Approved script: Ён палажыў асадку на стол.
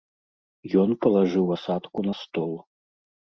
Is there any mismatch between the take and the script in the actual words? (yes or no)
no